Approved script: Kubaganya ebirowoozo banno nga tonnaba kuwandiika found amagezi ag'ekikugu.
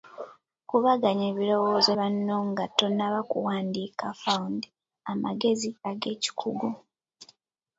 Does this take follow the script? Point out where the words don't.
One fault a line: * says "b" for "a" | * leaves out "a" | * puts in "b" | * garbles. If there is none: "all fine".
all fine